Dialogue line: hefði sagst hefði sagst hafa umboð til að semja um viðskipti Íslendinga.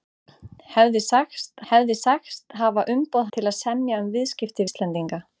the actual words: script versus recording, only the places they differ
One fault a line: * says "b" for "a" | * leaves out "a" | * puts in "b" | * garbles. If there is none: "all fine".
all fine